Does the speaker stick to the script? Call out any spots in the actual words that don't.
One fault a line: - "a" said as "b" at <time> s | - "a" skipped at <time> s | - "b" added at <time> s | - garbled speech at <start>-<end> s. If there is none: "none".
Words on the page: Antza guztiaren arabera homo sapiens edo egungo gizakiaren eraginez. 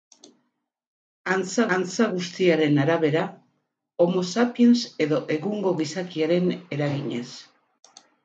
- "antza" added at 1.8 s